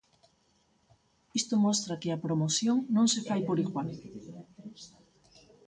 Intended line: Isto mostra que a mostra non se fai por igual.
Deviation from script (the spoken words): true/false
true